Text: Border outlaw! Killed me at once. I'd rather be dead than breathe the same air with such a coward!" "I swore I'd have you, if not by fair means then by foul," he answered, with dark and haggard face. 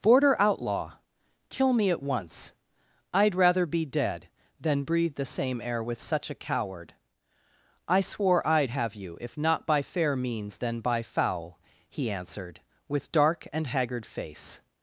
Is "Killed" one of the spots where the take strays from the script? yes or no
yes